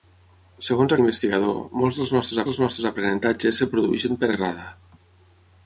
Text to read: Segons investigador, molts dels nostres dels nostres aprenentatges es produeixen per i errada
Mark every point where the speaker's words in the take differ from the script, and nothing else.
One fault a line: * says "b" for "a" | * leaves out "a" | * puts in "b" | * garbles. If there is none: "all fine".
all fine